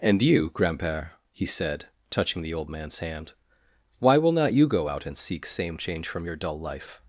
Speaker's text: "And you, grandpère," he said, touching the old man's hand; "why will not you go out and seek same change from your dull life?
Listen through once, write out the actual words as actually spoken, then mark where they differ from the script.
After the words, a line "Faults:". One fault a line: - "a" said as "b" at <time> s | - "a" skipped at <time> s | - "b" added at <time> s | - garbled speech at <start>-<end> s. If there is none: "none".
"And you, grandpère," he said, touching the old man's hand; "why will not you go out and seek same change from your dull life?
Faults:
none